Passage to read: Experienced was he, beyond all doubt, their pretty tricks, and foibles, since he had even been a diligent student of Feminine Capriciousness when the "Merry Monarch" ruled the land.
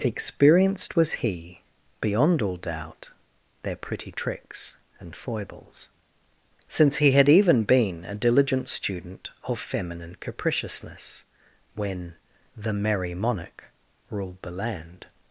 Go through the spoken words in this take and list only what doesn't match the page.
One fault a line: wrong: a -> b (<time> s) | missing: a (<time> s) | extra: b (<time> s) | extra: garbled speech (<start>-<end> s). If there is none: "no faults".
no faults